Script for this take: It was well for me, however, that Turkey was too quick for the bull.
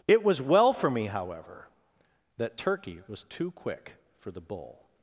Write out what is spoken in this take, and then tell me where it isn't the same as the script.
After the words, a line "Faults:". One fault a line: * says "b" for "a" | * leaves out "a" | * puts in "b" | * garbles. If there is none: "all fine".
It was well for me, however, that Turkey was too quick for the bull.
Faults:
all fine